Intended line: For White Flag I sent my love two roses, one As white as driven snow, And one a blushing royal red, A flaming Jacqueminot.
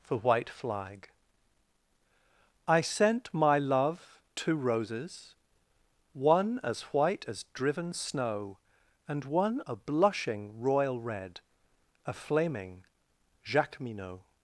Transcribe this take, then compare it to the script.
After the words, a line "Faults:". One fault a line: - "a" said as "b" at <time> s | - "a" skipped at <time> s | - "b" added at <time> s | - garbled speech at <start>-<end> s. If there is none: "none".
For White Flag I sent my love two roses, one As white as driven snow, And one a blushing royal red, A flaming Jacqueminot.
Faults:
none